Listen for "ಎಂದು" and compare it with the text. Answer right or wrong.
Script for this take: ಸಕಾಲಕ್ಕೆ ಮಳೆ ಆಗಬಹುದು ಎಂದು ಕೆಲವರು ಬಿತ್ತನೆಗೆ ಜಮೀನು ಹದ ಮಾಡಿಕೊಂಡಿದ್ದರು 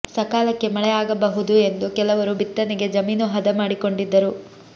right